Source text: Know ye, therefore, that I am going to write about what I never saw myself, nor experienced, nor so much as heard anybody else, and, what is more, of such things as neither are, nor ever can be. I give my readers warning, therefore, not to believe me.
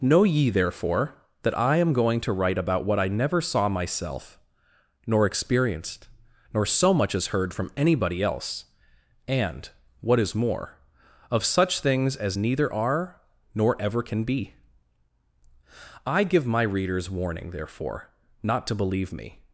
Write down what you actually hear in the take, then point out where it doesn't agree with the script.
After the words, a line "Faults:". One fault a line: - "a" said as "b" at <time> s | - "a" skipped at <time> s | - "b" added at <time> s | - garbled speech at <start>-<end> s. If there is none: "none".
Know ye, therefore, that I am going to write about what I never saw myself, nor experienced, nor so much as heard from anybody else, and, what is more, of such things as neither are, nor ever can be. I give my readers warning, therefore, not to believe me.
Faults:
- "from" added at 7.5 s